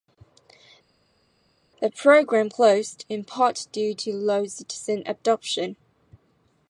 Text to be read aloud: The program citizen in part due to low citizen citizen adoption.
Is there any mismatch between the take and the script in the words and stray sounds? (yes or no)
yes